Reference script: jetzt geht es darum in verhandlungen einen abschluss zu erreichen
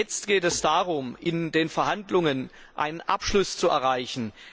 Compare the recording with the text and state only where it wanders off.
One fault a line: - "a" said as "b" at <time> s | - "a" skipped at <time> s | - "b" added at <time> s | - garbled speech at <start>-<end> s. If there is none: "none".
- "den" added at 1.5 s